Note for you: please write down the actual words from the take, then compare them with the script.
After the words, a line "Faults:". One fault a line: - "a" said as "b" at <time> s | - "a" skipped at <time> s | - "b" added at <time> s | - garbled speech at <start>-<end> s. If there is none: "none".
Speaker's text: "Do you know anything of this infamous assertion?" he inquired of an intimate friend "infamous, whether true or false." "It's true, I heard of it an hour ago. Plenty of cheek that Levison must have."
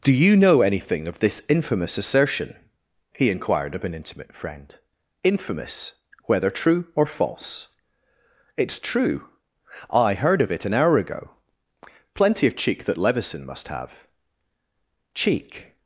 "Do you know anything of this infamous assertion?" he inquired of an intimate friend "infamous, whether true or false." "It's true, I heard of it an hour ago. Plenty of cheek that Levison must have." "Cheek
Faults:
- "Cheek" added at 15.1 s